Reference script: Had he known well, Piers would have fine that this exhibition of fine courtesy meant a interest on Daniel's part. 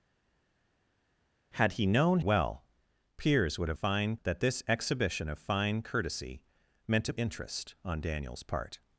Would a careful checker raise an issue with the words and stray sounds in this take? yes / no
no